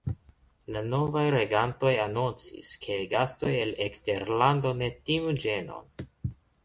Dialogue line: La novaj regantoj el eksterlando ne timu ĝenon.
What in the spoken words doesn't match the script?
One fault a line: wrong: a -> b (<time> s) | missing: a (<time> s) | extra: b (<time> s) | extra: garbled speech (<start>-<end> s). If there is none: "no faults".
extra: anoncis ke gastoj (2.0 s)